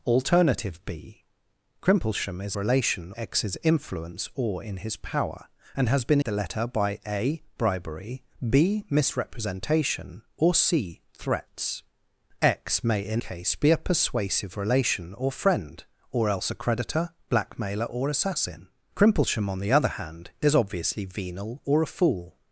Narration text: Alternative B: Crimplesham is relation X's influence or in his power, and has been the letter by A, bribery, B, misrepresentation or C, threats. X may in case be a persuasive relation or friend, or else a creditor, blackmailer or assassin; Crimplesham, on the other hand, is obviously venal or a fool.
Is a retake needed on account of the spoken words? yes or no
no